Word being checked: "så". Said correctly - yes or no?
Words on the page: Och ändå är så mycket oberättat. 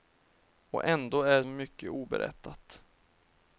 no